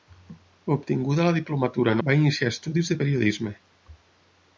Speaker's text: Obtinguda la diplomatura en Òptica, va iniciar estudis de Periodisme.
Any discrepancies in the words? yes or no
yes